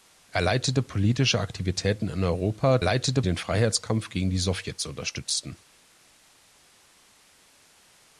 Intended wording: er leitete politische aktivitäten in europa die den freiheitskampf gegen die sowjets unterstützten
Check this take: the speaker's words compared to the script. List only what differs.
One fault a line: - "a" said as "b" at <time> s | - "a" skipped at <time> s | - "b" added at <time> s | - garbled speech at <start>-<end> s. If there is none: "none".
- "die" said as "leitete" at 2.8 s